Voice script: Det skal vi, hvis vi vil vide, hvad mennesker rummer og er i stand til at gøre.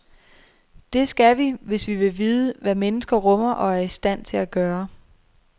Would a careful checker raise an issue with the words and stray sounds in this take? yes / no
no